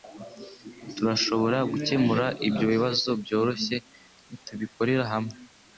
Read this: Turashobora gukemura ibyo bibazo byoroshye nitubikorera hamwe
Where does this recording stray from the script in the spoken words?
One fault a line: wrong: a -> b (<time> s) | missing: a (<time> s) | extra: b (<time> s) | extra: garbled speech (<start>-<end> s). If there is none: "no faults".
no faults